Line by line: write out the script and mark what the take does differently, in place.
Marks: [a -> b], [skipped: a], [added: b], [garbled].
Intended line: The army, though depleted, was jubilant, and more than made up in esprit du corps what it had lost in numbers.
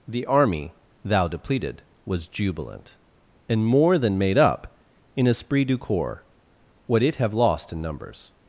The army, [though -> thou] depleted, was jubilant, and more than made up in esprit du corps what it [had -> have] lost in numbers.